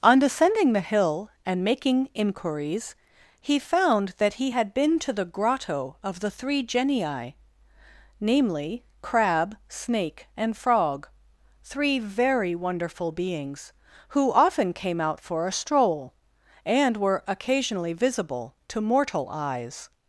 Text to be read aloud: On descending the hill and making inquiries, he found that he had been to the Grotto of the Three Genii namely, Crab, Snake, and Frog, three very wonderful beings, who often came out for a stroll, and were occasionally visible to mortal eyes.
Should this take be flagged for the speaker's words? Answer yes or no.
no